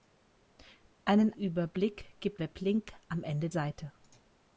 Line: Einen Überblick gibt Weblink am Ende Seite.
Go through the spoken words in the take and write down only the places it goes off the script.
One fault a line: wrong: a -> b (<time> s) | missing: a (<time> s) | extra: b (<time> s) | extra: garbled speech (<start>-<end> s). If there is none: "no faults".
no faults